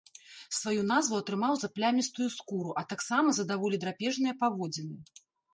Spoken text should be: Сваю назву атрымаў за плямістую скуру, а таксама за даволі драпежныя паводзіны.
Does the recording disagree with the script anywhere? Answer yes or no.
no